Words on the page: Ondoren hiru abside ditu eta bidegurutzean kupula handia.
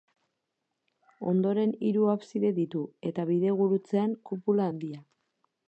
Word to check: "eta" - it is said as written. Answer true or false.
true